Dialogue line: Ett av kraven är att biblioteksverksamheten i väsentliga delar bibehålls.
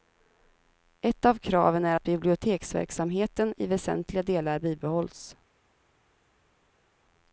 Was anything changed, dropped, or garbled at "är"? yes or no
no